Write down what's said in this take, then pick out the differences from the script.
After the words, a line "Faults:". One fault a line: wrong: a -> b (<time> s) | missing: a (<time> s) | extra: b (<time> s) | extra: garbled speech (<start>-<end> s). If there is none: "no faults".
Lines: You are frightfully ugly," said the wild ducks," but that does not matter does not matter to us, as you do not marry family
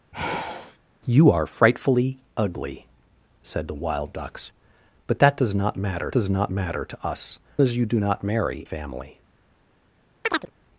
You are frightfully ugly," said the wild ducks," but that does not matter does not matter to us, as you do not marry family
Faults:
no faults